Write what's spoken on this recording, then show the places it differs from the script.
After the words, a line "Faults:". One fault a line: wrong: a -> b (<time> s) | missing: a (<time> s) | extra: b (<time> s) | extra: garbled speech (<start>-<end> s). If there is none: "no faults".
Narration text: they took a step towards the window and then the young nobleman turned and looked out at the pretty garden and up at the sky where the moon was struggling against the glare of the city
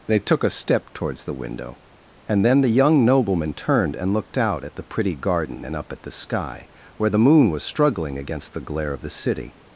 they took a step towards the window and then the young nobleman turned and looked out at the pretty garden and up at the sky where the moon was struggling against the glare of the city
Faults:
no faults